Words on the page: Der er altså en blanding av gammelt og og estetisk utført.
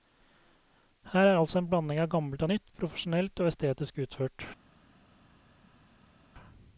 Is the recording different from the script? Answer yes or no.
yes